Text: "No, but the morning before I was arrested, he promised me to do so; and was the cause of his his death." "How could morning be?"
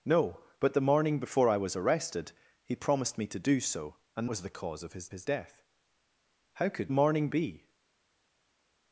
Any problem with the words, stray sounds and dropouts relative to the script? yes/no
no